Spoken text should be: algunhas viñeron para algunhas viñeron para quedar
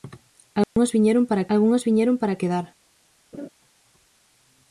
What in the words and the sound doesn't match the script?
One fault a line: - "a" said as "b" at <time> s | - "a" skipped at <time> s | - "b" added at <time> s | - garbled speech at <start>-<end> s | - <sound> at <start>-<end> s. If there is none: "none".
- dropout at 0.6-0.8 s
- laugh at 3.3-3.5 s